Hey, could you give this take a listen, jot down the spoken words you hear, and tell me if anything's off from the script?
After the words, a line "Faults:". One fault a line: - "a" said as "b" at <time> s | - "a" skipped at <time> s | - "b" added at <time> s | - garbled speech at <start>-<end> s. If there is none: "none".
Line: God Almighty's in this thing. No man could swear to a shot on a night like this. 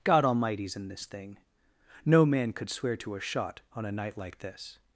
God Almighty's in this thing. No man could swear to a shot on a night like this.
Faults:
none